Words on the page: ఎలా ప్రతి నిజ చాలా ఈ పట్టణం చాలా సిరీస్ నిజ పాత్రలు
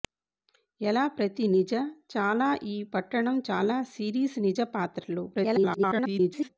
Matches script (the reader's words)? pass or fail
fail